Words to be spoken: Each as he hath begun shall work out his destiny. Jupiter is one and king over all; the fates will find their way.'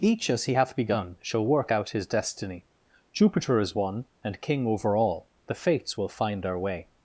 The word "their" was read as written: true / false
false